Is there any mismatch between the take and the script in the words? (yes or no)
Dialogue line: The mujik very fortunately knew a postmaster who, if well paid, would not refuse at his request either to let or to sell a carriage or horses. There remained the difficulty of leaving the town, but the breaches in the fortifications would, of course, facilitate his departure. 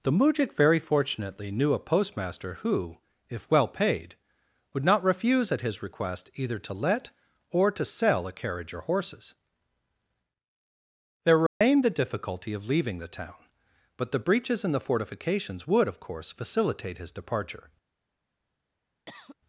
no